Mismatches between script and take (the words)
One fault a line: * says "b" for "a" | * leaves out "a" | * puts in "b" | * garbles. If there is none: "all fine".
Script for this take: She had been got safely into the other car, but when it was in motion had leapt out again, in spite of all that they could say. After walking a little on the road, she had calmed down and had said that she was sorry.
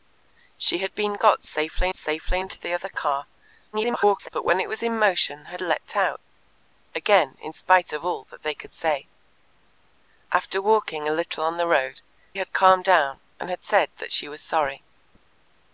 * puts in "safely"
* garbles
* leaves out "she"